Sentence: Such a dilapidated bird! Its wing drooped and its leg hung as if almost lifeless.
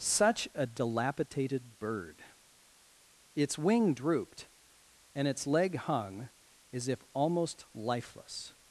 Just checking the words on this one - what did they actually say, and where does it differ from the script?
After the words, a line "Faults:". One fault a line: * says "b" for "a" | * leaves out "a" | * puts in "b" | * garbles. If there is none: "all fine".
Such a dilapidated bird! Its wing drooped and its leg hung as if almost lifeless.
Faults:
all fine